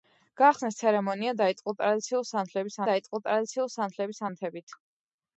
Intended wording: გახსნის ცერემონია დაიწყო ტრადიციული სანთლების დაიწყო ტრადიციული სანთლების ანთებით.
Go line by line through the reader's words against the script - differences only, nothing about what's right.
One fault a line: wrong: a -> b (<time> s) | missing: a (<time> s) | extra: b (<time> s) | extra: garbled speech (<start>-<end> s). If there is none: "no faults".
no faults